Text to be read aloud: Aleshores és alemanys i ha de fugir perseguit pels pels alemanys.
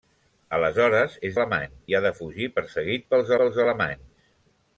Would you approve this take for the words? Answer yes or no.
yes